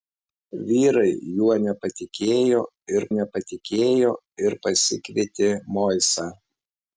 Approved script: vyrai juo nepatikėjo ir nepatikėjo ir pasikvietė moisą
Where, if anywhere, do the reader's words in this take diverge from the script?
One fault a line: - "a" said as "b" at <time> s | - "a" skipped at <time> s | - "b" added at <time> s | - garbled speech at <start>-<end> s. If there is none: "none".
none